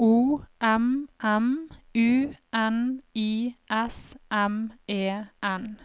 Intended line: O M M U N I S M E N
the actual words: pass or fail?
pass